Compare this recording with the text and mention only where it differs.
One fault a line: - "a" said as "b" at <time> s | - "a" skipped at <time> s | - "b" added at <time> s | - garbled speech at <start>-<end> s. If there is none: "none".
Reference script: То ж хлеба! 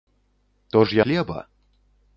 none